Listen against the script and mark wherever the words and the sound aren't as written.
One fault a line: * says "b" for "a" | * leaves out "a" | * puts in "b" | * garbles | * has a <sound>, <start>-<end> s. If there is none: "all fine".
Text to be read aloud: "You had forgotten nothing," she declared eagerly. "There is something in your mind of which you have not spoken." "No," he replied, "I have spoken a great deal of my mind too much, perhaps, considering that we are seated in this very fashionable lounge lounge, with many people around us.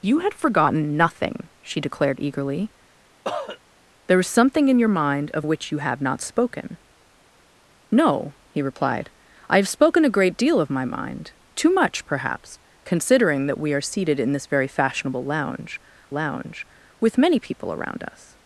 * has a cough, 3.2-3.6 s